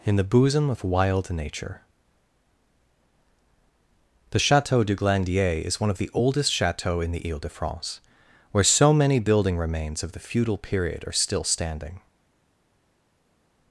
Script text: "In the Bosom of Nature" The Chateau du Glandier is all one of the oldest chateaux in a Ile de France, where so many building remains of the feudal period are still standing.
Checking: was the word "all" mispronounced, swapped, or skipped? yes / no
yes